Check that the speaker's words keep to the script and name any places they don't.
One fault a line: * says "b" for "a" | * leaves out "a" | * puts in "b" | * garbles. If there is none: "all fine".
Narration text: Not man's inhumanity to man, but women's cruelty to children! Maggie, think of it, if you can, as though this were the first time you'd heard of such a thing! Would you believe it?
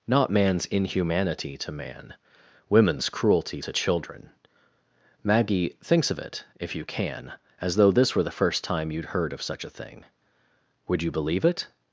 * leaves out "but"
* says "thinks" for "think"